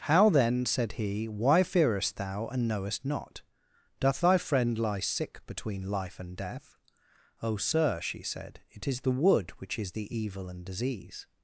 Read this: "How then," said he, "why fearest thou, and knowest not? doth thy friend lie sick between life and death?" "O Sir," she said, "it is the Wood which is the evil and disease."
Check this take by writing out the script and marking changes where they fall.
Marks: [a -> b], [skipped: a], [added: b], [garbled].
"How then," said he, "why fearest thou, and knowest not? doth thy friend lie sick between life and death?" "O Sir," she said, "it is the Wood which is the evil and disease."